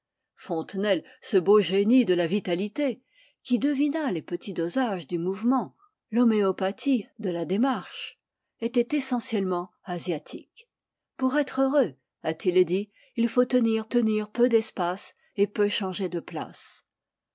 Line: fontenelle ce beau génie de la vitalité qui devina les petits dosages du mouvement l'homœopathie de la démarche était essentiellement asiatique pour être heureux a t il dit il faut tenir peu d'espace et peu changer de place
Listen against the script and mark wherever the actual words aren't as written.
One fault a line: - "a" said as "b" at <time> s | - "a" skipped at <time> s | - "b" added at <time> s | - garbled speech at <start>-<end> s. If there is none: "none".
- "tenir" added at 13.9 s